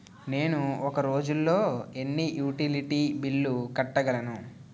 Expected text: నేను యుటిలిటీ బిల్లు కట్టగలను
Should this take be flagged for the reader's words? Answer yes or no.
yes